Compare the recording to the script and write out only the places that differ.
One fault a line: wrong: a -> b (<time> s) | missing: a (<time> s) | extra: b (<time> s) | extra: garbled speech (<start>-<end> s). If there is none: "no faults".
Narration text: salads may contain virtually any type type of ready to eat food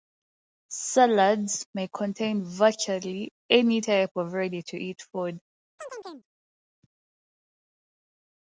missing: type (4.2 s)